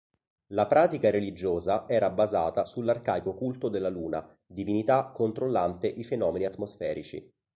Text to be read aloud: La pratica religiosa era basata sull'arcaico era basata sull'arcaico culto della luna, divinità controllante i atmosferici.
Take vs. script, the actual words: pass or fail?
fail